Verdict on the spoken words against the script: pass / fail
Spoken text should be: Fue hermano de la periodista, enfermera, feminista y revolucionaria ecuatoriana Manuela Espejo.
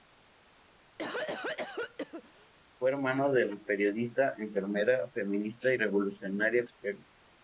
fail